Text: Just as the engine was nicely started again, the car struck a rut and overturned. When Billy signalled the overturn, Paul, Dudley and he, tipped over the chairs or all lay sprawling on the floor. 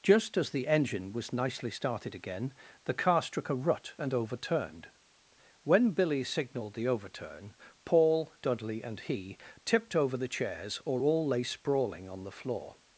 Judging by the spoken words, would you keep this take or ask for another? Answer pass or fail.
pass